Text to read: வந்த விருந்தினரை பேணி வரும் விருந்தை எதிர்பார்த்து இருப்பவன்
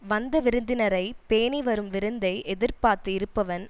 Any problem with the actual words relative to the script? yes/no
no